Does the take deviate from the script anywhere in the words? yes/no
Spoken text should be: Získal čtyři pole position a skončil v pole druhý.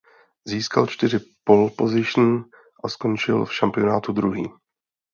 yes